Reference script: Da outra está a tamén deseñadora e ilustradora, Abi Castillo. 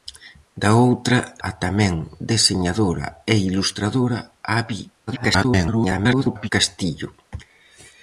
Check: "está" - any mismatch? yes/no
yes